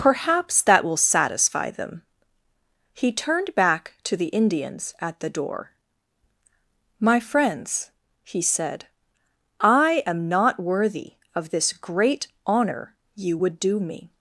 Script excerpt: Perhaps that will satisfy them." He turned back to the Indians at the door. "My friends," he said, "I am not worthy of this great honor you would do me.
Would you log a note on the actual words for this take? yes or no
no